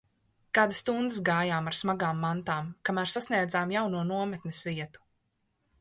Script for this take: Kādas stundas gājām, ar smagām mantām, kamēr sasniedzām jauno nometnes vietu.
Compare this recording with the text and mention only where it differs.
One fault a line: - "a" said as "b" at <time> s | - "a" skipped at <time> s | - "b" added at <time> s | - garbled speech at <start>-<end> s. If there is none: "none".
none